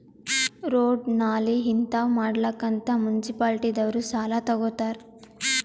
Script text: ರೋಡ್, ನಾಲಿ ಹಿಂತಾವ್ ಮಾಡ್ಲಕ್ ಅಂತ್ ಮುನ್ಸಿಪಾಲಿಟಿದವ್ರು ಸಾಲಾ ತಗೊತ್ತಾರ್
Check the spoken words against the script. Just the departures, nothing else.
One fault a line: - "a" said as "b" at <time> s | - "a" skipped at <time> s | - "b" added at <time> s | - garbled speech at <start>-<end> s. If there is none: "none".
none